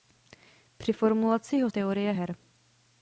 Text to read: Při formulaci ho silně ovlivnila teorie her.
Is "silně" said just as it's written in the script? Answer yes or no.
no